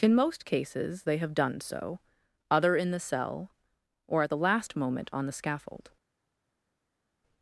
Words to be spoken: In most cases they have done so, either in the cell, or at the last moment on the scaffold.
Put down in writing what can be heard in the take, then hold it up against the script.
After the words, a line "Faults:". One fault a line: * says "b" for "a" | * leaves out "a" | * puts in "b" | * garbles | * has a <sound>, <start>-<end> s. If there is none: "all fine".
In most cases they have done so, other in the cell, or at the last moment on the scaffold.
Faults:
* says "other" for "either"